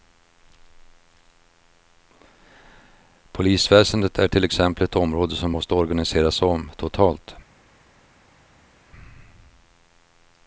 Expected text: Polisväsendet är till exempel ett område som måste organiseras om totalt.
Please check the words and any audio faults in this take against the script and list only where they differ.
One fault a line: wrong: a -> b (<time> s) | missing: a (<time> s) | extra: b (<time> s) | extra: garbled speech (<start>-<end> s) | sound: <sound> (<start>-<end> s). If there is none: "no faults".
no faults